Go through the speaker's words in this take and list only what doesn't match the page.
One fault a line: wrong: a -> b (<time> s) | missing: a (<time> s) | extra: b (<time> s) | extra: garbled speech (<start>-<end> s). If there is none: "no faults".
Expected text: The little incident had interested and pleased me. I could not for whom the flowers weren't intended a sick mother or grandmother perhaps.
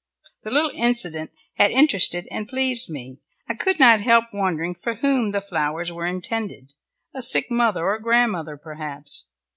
extra: help wondering (4.0 s)
wrong: weren't -> were (5.9 s)